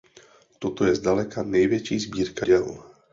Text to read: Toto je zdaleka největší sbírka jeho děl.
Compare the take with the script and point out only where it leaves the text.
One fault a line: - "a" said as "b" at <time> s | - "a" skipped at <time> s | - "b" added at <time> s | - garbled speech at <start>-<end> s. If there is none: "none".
- "jeho" skipped at 2.5 s